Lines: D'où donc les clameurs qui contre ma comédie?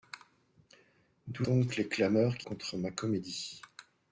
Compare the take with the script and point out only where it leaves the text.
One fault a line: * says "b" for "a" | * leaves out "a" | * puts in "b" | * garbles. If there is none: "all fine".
all fine